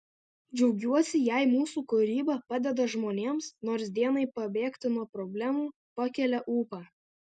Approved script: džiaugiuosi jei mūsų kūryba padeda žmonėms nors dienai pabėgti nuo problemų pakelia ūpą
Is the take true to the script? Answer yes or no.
yes